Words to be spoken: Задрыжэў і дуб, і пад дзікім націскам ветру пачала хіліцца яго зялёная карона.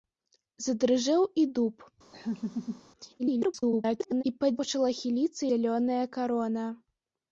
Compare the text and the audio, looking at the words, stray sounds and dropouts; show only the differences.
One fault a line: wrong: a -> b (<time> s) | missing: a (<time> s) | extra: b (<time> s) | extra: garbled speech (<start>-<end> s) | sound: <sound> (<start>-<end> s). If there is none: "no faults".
sound: laugh (2.1-2.8 s)
extra: garbled speech (3.2-4.2 s)
missing: дзікім націскам ветру (4.5 s)
missing: яго (5.4 s)